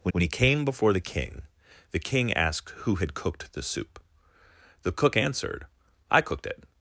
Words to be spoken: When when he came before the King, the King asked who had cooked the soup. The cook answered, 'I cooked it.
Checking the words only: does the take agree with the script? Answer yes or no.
yes